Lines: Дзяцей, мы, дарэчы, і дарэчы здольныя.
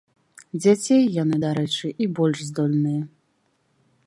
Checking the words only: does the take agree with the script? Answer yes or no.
no